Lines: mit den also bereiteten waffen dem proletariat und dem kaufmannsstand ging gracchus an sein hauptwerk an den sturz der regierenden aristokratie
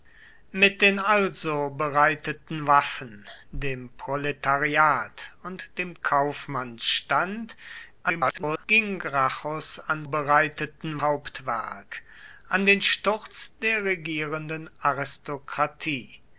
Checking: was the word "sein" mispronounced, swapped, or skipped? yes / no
yes